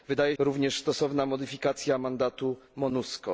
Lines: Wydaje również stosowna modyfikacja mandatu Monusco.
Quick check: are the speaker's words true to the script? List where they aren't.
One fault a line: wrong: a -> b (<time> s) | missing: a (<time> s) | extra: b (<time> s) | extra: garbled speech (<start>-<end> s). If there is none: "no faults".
no faults